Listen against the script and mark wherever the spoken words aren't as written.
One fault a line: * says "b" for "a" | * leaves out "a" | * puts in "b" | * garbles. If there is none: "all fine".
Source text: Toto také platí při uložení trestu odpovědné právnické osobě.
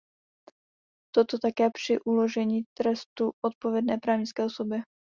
* leaves out "platí"